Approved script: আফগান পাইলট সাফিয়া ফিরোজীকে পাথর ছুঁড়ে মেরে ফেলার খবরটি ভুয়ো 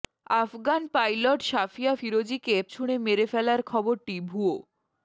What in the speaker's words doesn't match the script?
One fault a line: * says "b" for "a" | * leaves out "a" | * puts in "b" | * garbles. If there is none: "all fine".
* leaves out "পাথর"